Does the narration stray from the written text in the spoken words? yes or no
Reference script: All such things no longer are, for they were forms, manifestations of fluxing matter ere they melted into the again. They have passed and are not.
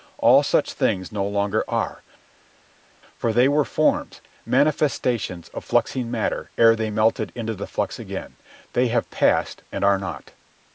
yes